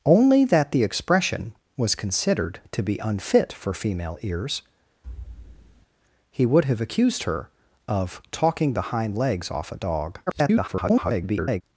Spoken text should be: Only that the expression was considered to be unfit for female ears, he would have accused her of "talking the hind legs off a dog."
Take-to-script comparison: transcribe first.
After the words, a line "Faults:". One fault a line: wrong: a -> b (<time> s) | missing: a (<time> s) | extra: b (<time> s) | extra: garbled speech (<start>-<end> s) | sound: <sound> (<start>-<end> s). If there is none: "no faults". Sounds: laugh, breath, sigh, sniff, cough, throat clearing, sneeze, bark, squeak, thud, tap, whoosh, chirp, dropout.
Only that the expression was considered to be unfit for female ears, he would have accused her of "talking the hind legs off a dog." [garbled]
Faults:
sound: thud (5.0-5.9 s)
extra: garbled speech (10.3-11.6 s)